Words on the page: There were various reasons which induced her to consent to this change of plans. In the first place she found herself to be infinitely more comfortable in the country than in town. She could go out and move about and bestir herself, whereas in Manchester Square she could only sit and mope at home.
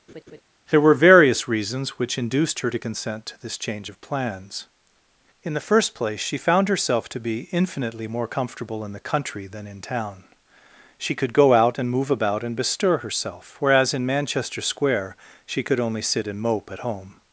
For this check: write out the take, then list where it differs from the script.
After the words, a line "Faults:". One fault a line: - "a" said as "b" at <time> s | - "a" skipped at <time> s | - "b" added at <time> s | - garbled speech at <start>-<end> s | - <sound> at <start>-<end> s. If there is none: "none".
There were various reasons which induced her to consent to this change of plans. In the first place she found herself to be infinitely more comfortable in the country than in town. She could go out and move about and bestir herself, whereas in Manchester Square she could only sit and mope at home.
Faults:
- laugh at 0.1-0.4 s